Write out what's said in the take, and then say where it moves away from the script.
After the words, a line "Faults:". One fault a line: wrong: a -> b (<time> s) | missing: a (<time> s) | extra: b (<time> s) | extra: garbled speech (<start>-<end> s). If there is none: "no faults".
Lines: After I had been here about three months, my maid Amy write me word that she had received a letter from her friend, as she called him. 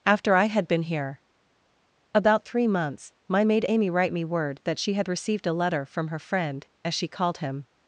After I had been here about three months, my maid Amy write me word that she had received a letter from her friend, as she called him.
Faults:
no faults